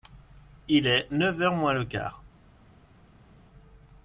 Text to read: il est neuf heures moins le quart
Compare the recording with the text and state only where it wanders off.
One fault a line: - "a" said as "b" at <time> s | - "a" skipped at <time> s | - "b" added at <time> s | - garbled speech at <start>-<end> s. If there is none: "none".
none